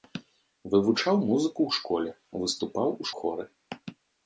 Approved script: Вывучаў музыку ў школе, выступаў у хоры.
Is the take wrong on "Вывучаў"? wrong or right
right